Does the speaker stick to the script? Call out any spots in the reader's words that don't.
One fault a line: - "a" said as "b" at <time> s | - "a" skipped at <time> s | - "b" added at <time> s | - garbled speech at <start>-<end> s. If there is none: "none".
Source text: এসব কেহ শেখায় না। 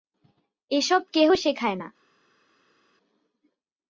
none